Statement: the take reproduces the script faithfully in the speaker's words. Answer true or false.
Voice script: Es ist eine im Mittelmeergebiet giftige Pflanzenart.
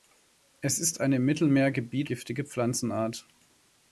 true